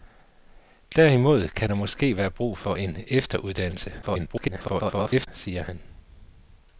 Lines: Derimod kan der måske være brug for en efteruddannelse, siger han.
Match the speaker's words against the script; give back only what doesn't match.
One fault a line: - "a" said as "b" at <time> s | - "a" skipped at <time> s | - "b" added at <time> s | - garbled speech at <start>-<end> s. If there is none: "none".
- garbled speech at 4.0-5.3 s